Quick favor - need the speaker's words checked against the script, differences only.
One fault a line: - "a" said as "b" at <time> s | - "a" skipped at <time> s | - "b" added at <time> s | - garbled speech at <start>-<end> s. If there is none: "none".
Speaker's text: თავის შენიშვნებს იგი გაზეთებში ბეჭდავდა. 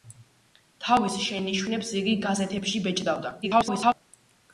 - garbled speech at 3.4-3.9 s